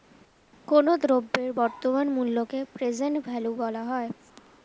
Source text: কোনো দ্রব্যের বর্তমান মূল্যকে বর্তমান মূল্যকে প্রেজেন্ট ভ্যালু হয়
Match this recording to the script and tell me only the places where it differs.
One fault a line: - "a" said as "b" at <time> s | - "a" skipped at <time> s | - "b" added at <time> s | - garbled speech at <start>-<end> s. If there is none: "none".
- "বর্তমান মূল্যকে" skipped at 2.6 s
- "বলা" added at 3.6 s